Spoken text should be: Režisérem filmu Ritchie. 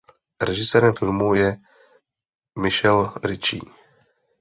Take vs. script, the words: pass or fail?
fail